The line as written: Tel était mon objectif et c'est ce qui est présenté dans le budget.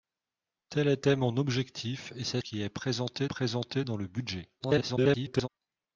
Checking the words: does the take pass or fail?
fail